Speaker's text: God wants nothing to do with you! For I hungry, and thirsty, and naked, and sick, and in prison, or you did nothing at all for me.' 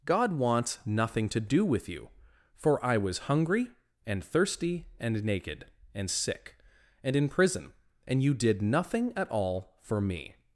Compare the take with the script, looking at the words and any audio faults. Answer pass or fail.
fail